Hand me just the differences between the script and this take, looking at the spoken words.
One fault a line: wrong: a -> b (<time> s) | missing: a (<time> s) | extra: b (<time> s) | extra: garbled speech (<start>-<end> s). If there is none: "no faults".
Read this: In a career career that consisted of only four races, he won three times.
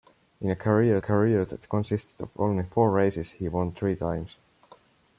no faults